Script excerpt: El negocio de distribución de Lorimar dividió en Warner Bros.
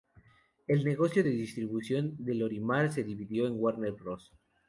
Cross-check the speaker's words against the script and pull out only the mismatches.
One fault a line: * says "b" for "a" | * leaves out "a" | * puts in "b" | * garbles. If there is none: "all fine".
* puts in "se"